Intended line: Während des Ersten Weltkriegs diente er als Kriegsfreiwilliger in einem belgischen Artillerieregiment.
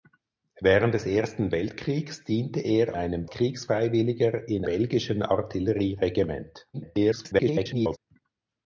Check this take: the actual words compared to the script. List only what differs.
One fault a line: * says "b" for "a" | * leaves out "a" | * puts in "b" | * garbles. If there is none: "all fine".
* says "einem" for "als"
* leaves out "einem"
* garbles